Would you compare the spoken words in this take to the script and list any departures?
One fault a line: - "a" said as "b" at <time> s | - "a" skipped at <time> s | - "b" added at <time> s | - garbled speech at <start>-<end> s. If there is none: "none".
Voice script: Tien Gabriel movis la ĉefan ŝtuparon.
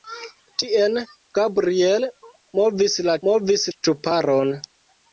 - "ĉefan" said as "movis" at 3.3 s